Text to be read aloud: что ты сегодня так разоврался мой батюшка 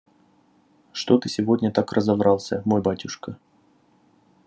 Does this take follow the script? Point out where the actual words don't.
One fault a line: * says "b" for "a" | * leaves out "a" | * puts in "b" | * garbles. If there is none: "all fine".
all fine